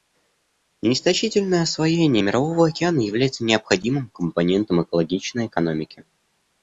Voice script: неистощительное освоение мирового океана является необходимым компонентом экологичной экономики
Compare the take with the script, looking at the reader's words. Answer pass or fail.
pass